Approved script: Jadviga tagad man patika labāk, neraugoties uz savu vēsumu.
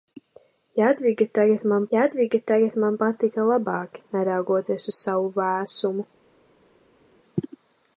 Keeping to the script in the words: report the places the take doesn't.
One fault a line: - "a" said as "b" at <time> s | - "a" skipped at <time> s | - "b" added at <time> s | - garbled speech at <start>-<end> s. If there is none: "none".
- "jadviga tagad man" added at 1.9 s